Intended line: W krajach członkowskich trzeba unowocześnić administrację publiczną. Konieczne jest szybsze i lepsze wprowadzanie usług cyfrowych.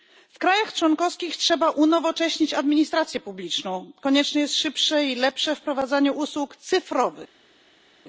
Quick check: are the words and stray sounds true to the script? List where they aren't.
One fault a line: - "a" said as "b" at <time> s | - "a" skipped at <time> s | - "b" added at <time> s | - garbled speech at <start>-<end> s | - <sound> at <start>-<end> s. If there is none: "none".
none